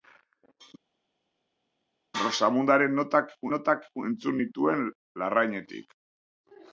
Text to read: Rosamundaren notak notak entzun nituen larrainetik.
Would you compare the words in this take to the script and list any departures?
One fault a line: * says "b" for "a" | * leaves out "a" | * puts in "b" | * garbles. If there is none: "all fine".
all fine